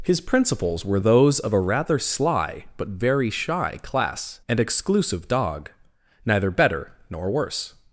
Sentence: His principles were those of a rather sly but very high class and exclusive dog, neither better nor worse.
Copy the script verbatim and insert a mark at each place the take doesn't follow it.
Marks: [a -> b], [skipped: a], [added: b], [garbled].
His principles were those of a rather sly but very [high -> shy] class and exclusive dog, neither better nor worse.